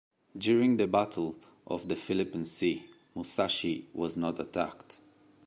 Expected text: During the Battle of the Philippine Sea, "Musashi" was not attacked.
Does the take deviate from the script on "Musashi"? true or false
false